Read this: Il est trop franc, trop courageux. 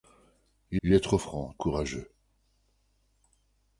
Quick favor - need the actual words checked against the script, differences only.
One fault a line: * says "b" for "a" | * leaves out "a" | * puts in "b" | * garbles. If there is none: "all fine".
* puts in "il"
* leaves out "trop"